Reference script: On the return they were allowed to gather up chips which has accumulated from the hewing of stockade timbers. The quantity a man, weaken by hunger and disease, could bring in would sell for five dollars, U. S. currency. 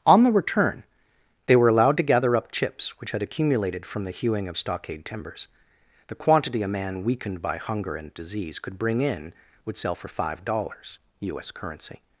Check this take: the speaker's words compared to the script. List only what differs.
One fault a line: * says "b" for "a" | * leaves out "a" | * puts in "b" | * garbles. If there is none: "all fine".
* says "had" for "has"
* says "weakened" for "weaken"